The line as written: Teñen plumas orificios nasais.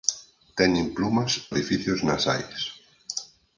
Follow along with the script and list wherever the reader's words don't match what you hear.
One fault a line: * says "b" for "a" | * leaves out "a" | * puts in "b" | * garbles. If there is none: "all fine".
all fine